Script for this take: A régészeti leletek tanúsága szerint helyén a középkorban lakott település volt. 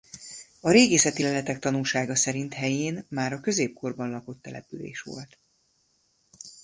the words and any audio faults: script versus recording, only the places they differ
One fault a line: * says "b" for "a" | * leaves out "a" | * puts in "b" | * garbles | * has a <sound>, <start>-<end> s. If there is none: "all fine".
* puts in "már"